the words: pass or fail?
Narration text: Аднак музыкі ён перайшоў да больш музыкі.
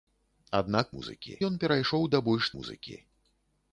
pass